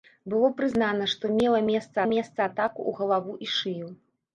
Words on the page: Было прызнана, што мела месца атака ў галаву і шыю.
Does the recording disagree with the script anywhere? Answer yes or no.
yes